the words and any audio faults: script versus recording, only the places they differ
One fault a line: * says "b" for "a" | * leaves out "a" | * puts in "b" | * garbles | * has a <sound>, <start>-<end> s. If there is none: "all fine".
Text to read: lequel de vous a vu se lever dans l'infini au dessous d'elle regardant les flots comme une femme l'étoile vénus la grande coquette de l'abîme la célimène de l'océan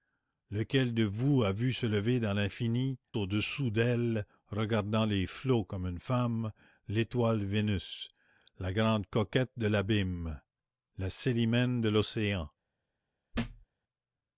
* has a thud, 13.3-13.7 s